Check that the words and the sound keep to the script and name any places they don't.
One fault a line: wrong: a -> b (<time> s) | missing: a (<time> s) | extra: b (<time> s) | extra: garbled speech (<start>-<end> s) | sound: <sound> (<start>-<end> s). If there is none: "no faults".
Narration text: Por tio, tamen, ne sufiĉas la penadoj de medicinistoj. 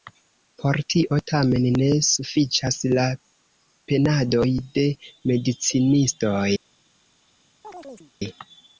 sound: chirp (7.6-8.1 s)